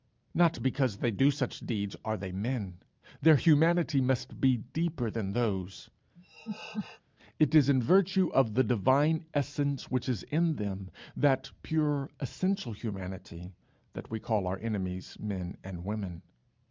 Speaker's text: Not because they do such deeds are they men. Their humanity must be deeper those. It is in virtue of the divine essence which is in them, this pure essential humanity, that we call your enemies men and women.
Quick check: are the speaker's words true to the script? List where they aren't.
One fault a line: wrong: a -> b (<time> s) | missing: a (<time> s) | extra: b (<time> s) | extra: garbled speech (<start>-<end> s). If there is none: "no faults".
extra: than (5.1 s)
wrong: this -> that (11.1 s)
wrong: your -> our (14.5 s)